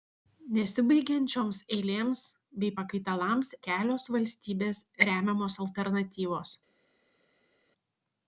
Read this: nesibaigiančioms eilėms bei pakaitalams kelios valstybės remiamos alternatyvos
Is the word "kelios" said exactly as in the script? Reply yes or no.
yes